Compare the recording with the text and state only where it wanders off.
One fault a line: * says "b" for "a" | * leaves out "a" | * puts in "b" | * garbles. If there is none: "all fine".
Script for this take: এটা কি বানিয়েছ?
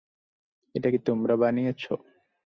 * puts in "তোমরা"